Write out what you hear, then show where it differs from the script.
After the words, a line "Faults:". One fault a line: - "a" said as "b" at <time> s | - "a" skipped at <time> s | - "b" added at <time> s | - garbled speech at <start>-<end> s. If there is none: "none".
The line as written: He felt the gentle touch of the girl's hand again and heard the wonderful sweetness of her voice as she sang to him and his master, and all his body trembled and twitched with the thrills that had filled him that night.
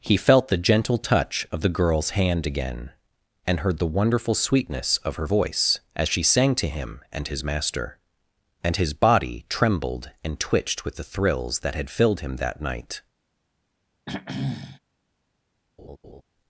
He felt the gentle touch of the girl's hand again and heard the wonderful sweetness of her voice as she sang to him and his master, and his body trembled and twitched with the thrills that had filled him that night.
Faults:
- "all" skipped at 8.8 s